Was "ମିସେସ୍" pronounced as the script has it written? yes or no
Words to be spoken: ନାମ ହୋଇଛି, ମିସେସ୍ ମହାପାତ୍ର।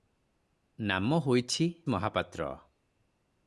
no